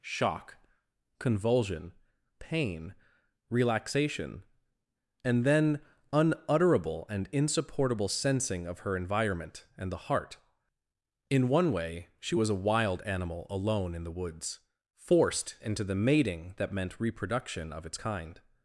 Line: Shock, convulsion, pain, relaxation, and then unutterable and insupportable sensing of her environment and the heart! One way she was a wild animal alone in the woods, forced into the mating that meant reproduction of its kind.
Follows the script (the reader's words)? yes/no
no